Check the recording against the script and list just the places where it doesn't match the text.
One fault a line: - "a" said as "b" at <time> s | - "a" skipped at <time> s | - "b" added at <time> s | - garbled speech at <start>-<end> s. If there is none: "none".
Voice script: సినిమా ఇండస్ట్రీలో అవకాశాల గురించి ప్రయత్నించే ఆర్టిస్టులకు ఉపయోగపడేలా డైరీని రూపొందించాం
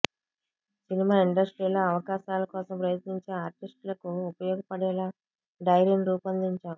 - "గురించి" said as "కోసం" at 2.5 s